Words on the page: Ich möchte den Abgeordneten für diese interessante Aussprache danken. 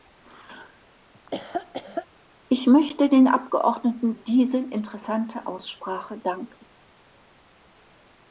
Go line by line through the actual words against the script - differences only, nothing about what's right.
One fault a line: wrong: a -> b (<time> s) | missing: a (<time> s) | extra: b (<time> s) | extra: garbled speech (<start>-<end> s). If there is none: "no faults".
missing: für (4.1 s)